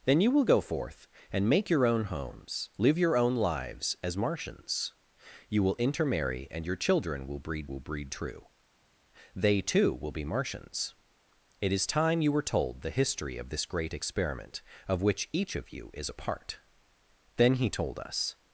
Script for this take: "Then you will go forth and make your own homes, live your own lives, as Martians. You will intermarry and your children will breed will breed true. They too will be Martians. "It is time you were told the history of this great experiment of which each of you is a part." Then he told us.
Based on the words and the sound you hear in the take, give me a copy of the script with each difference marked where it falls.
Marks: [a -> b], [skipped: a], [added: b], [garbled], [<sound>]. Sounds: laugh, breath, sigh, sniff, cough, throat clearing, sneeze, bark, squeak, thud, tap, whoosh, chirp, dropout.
"Then you will go forth and make your own homes, live your own lives, as Martians. You will intermarry and your children will breed will breed true. They too will be Martians. "It is time you were told the history of this great experiment of which each of you is a part." Then he told us.